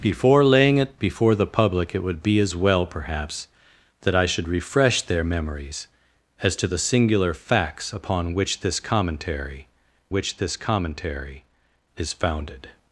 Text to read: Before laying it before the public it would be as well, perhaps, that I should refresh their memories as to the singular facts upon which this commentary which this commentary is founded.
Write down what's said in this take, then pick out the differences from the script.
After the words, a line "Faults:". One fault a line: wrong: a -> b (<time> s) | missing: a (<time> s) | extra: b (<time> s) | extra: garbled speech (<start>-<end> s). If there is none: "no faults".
Before laying it before the public it would be as well, perhaps, that I should refresh their memories as to the singular facts upon which this commentary which this commentary is founded.
Faults:
no faults